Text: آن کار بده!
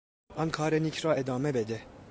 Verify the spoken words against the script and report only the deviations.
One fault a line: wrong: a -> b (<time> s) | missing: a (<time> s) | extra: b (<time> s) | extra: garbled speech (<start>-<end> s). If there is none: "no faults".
extra: نیک را ادامه (0.7 s)